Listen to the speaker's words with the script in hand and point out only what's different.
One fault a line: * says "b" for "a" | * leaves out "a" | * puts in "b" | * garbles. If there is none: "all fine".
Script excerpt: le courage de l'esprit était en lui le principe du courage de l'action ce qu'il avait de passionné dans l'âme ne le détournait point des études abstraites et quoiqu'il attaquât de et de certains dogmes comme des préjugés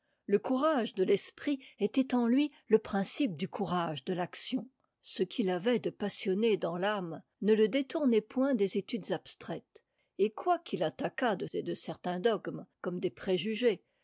all fine